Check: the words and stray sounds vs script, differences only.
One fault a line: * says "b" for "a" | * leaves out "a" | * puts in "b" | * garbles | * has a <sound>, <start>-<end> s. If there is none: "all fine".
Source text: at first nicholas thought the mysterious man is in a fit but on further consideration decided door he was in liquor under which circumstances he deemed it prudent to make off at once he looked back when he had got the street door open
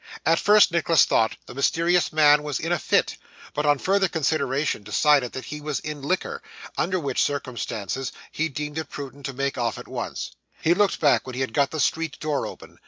* says "was" for "is"
* says "that" for "door"